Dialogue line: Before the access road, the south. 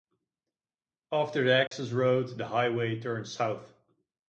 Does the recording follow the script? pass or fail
fail